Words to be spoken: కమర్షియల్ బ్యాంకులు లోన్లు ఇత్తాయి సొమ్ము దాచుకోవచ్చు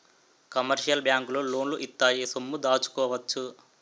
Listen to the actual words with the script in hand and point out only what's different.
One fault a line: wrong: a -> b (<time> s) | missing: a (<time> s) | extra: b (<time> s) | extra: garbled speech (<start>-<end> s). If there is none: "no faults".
no faults